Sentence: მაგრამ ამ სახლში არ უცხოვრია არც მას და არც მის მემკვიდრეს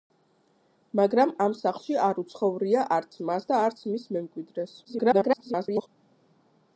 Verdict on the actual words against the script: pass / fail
fail